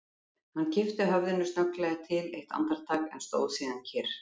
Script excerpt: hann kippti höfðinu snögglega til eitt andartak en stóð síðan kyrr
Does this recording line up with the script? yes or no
yes